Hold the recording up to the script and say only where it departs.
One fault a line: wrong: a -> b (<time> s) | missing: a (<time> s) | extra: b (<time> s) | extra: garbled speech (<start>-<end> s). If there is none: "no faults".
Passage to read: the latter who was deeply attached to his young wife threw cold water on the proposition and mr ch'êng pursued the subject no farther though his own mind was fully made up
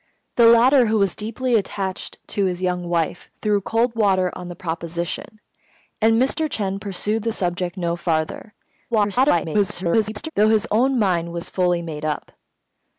extra: garbled speech (8.9-10.3 s)